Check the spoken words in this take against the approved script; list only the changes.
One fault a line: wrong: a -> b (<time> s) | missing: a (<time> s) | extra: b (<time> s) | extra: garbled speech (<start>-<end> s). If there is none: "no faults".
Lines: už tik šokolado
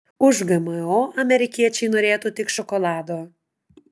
extra: gmo amerikiečiai norėtų (0.5 s)